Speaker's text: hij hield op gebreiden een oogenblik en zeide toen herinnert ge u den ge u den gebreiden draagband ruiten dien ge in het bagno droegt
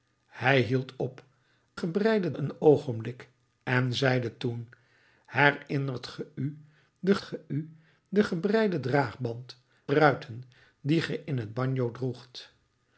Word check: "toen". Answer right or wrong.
right